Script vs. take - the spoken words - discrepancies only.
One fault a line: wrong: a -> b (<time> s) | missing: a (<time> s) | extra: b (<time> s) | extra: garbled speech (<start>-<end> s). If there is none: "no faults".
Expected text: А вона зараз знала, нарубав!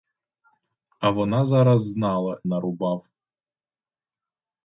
no faults